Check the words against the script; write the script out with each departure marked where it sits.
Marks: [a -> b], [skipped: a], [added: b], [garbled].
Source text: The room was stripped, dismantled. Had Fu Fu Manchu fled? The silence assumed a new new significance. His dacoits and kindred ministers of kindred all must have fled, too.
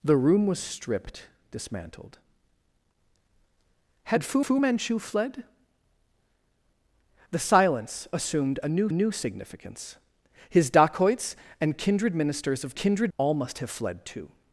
The room was stripped, dismantled. Had Fu Fu Manchu fled? The silence assumed a new new significance. His dacoits and kindred ministers of kindred all must have fled, too.